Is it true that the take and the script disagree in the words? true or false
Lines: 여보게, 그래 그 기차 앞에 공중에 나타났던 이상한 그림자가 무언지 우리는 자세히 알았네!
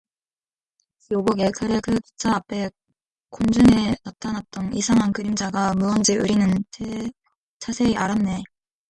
false